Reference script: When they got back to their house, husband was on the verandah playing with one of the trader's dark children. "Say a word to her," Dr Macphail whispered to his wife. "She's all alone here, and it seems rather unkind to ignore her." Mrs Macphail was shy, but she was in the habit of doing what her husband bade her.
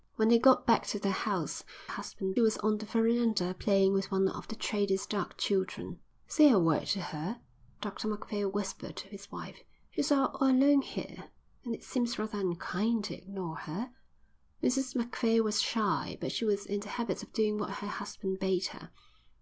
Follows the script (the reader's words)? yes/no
yes